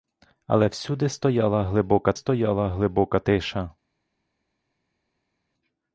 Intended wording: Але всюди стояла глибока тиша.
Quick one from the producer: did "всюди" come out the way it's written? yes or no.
yes